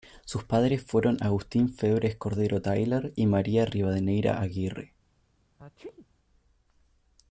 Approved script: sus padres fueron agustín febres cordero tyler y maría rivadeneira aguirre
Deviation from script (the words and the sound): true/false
true